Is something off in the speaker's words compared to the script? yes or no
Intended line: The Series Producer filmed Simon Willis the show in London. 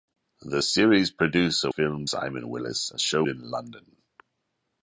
no